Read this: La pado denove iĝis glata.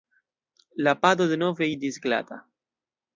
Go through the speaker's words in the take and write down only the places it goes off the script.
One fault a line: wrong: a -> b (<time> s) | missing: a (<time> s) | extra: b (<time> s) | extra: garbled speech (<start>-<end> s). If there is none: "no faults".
no faults